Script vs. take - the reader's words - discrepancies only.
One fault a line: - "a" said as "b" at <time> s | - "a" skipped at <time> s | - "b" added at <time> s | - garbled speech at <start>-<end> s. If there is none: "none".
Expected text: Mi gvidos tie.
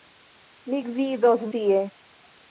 none